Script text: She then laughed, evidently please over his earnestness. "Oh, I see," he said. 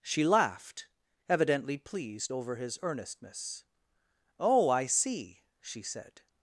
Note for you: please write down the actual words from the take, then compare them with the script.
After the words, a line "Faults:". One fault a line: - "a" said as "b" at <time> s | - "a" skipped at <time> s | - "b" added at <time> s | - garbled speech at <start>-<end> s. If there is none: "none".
She laughed, evidently pleased over his earnestness. "Oh, I see," she said.
Faults:
- "then" skipped at 0.2 s
- "please" said as "pleased" at 1.8 s
- "he" said as "she" at 5.6 s